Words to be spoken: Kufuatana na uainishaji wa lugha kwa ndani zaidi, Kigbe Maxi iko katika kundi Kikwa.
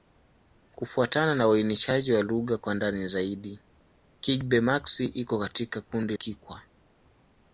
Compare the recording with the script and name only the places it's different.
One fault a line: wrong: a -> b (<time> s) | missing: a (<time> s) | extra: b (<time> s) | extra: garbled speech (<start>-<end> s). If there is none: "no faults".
no faults